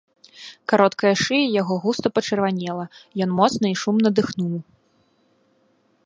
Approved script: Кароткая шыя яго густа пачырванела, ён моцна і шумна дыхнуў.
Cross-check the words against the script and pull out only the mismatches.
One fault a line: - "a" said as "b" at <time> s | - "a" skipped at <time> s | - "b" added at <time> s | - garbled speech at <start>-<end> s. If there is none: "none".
none